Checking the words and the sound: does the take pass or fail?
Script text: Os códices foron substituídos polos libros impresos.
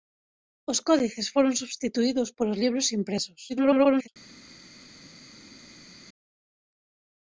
fail